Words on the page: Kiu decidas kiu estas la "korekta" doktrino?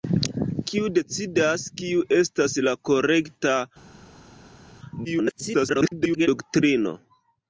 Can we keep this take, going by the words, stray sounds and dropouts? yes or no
no